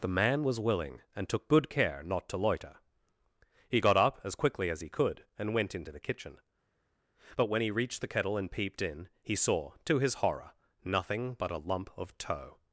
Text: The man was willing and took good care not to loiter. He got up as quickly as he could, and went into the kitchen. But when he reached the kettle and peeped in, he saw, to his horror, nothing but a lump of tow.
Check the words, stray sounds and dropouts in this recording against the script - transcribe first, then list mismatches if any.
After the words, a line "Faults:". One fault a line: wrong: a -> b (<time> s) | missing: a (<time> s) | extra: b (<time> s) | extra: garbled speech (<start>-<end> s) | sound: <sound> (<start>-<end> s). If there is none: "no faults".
The man was willing and took good care not to loiter. He got up as quickly as he could, and went into the kitchen. But when he reached the kettle and peeped in, he saw, to his horror, nothing but a lump of tow.
Faults:
no faults